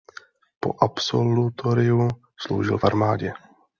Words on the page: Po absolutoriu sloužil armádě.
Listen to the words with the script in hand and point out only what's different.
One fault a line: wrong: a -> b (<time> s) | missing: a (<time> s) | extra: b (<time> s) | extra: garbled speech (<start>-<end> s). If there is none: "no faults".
extra: v (2.8 s)